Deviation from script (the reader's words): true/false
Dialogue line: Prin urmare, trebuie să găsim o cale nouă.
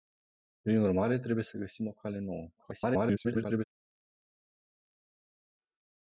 true